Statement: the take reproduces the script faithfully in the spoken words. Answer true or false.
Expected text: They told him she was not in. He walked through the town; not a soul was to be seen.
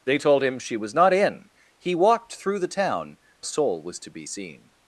false